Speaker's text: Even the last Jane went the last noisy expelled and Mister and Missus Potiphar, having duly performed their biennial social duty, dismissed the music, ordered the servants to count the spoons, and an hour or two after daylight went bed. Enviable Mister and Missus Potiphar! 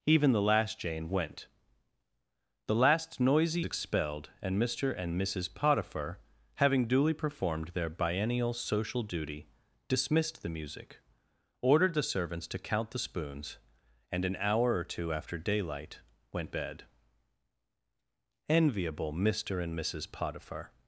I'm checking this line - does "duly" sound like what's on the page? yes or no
yes